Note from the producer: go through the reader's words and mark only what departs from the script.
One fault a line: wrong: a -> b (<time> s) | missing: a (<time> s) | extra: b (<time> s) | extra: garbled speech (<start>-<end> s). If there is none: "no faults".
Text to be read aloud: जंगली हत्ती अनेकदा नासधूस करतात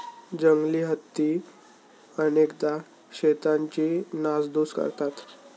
extra: शेतांची (3.1 s)